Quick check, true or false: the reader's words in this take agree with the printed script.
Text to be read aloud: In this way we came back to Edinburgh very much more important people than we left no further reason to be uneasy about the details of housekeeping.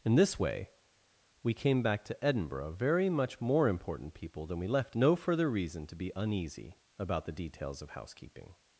true